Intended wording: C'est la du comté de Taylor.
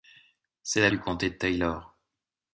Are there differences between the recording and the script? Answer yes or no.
no